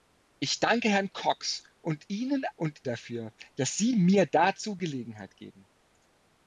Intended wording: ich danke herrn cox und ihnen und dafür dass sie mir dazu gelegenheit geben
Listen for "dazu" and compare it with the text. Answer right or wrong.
right